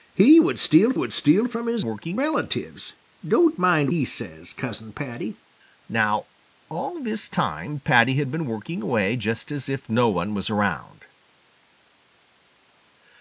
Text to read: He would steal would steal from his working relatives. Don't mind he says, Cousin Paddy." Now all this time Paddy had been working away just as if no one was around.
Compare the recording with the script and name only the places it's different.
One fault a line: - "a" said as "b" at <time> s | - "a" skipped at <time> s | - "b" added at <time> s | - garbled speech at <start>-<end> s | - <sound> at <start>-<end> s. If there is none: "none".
none